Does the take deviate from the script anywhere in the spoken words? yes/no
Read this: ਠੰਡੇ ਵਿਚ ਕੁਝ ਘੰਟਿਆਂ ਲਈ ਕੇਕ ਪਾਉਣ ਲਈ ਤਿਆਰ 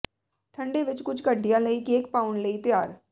no